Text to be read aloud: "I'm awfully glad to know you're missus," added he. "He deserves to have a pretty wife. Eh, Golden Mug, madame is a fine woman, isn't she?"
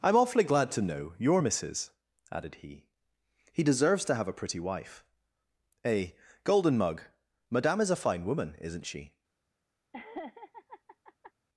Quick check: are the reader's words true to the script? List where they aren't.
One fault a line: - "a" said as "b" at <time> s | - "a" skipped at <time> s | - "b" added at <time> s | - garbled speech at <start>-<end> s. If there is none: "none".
none